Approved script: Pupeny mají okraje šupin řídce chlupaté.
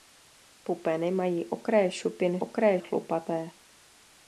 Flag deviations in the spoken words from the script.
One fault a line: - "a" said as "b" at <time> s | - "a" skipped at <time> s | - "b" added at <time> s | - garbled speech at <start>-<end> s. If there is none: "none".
- "řídce" said as "okraje" at 2.4 s